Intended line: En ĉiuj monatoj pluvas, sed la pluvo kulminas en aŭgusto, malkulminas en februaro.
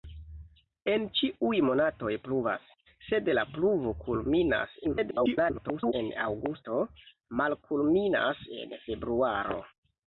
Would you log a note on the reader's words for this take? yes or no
yes